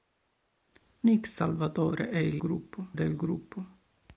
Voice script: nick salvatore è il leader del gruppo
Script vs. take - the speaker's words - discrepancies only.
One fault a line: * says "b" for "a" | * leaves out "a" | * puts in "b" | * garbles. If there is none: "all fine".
* says "gruppo" for "leader"